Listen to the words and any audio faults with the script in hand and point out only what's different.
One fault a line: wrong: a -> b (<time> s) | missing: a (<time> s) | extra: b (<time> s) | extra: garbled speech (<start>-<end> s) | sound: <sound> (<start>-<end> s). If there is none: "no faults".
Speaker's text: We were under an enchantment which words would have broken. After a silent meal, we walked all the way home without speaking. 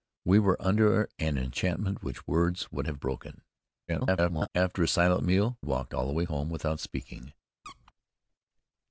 extra: garbled speech (3.9-4.5 s)
missing: we (5.6 s)
sound: squeak (7.6-7.9 s)